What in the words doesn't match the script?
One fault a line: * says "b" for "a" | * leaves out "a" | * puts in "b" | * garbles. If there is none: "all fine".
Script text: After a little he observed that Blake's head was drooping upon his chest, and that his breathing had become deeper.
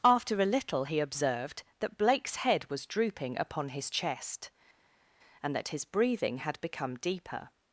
all fine